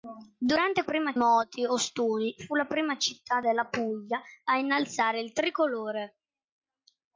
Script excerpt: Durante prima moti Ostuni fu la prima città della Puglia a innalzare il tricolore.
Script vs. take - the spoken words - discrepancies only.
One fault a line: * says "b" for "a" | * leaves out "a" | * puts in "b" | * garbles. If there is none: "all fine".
all fine